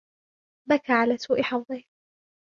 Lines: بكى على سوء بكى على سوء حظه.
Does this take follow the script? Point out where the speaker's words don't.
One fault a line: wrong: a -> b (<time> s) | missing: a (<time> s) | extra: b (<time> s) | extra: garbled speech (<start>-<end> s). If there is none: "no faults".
missing: بكى على سوء (1.4 s)